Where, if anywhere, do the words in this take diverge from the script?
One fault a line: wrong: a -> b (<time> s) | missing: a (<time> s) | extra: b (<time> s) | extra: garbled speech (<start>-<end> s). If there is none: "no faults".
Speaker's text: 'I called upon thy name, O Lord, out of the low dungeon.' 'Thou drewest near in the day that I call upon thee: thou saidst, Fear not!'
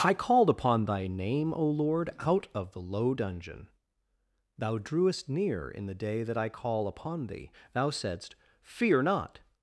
no faults